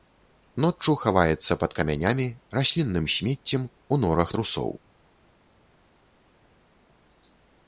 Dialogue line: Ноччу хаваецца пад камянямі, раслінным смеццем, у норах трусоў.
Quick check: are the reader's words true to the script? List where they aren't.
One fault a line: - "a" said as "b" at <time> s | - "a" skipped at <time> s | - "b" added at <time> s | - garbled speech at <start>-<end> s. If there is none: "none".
none